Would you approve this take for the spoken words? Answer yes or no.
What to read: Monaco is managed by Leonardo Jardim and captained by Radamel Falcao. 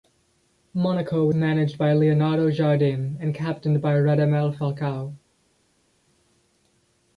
no